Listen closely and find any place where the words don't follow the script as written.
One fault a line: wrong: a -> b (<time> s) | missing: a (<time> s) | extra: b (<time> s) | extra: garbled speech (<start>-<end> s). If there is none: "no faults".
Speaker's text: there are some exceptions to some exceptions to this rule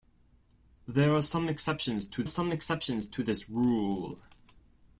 no faults